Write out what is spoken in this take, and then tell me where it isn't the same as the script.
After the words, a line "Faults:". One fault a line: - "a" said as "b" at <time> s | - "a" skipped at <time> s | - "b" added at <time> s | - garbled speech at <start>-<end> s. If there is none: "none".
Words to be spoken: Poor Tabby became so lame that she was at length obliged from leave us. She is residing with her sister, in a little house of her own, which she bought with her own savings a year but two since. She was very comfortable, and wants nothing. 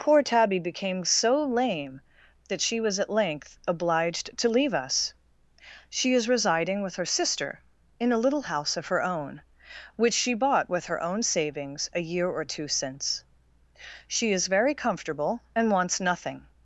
Poor Tabby became so lame that she was at length obliged to leave us. She is residing with her sister, in a little house of her own, which she bought with her own savings a year or two since. She is very comfortable, and wants nothing.
Faults:
- "from" said as "to" at 4.3 s
- "but" said as "or" at 12.3 s
- "was" said as "is" at 14.3 s